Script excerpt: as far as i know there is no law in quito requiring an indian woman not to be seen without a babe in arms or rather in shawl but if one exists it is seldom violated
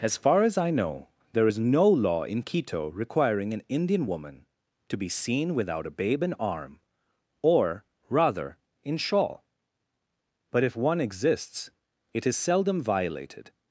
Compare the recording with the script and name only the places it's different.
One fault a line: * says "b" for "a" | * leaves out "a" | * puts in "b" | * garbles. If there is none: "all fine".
* leaves out "not"
* says "arm" for "arms"